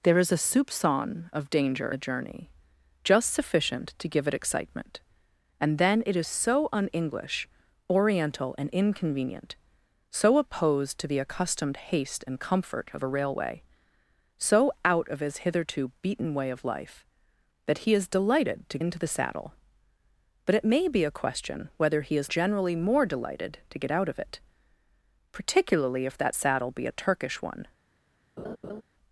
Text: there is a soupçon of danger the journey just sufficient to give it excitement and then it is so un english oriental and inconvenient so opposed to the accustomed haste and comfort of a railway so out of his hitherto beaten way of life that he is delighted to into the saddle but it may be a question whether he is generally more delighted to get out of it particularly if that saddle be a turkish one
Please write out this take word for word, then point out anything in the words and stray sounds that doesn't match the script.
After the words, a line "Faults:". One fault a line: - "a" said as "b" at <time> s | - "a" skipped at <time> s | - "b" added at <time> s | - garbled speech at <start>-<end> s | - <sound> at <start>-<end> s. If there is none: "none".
there is a soupçon of danger the journey just sufficient to give it excitement and then it is so un english oriental and inconvenient so opposed to the accustomed haste and comfort of a railway so out of his hitherto beaten way of life that he is delighted to into the saddle but it may be a question whether he is generally more delighted to get out of it particularly if that saddle be a turkish one
Faults:
- laugh at 28.4-28.8 s